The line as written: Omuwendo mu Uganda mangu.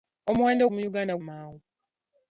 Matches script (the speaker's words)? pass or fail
pass